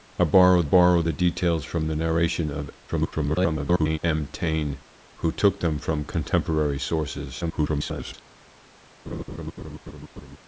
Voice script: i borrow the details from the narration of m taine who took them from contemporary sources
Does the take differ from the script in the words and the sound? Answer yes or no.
yes